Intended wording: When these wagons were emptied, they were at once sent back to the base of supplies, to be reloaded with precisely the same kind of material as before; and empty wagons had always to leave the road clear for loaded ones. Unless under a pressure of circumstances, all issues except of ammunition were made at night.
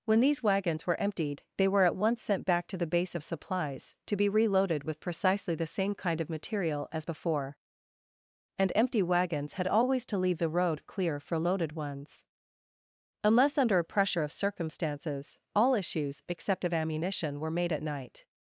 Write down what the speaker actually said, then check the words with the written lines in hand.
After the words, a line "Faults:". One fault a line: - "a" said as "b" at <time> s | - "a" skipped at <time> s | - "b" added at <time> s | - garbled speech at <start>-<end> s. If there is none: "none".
When these wagons were emptied, they were at once sent back to the base of supplies, to be reloaded with precisely the same kind of material as before; and empty wagons had always to leave the road clear for loaded ones. Unless under a pressure of circumstances, all issues except of ammunition were made at night.
Faults:
none